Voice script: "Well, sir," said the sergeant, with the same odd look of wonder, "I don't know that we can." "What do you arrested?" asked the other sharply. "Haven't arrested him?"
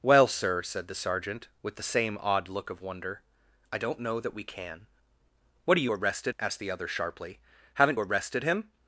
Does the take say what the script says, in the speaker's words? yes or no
yes